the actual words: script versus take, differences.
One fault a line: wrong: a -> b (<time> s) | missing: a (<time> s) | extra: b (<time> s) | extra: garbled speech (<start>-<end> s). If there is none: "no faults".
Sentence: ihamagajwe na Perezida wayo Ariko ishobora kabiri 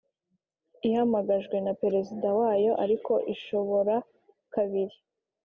no faults